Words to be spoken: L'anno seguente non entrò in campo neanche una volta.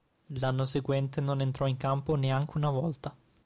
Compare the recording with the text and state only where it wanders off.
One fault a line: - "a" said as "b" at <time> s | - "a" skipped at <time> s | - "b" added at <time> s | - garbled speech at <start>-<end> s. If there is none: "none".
none